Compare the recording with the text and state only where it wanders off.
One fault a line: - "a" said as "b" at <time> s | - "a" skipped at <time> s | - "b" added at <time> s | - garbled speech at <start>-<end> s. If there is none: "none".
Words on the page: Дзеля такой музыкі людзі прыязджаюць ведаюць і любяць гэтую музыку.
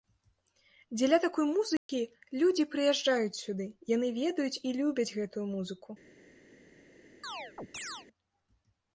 - "сюды яны" added at 3.4 s